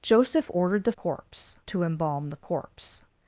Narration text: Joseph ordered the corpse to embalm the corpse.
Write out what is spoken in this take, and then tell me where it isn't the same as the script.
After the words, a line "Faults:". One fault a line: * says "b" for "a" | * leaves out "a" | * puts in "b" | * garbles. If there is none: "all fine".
Joseph ordered the corpse to embalm the corpse.
Faults:
all fine